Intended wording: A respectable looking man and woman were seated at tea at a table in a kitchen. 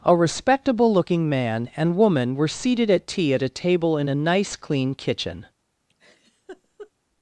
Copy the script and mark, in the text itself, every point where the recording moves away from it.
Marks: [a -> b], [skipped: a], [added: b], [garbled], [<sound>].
A respectable looking man and woman were seated at tea at a table in a [added: nice clean] kitchen. [laugh]